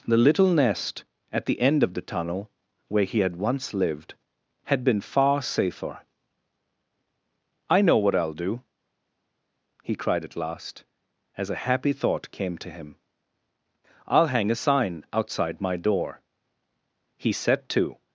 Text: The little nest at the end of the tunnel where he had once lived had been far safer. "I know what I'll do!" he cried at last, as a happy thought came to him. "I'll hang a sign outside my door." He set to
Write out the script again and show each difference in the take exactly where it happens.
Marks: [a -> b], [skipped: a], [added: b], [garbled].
The little nest at the end of the tunnel where he had once lived had been far safer. "I know what I'll do!" he cried at last, as a happy thought came to him. "I'll hang a sign outside my door." He set to